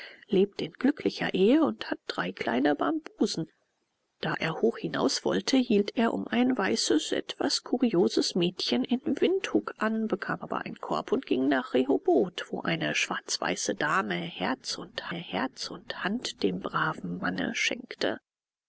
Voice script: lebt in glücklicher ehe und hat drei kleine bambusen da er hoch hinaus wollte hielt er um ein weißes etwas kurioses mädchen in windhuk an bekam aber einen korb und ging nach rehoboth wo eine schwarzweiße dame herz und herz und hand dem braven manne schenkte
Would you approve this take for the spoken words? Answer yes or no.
yes